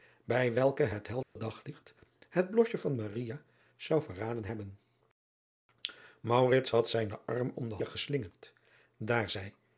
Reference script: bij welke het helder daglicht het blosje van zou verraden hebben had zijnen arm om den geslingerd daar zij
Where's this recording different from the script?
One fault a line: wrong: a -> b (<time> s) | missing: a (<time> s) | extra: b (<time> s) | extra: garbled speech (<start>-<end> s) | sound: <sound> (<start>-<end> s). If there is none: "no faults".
sound: dropout (1.2-1.4 s)